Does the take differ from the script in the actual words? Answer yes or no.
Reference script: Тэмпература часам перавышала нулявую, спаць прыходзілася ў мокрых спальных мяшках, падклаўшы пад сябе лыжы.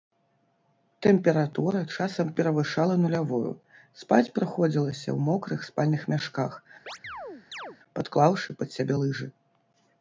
no